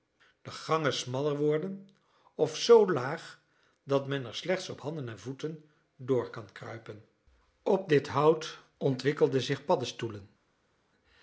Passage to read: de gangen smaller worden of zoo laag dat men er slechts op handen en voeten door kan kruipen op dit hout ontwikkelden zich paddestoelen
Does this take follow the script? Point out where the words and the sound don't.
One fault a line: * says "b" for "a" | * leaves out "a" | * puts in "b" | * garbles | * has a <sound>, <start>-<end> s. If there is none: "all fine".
all fine